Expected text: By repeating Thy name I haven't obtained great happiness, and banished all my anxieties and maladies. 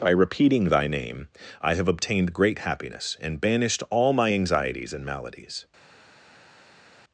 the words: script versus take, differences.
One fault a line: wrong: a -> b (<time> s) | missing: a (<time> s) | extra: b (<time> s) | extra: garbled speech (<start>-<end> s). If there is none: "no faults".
wrong: haven't -> have (1.8 s)